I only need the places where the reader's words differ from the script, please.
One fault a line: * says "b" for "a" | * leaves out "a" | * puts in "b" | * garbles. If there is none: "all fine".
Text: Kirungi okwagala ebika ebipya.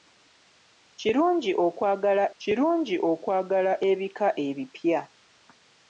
* puts in "kirungi okwagala"